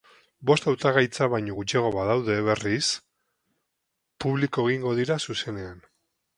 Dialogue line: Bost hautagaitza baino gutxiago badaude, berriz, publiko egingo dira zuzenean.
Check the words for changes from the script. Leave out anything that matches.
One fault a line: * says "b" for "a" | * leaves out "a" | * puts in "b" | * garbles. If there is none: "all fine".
all fine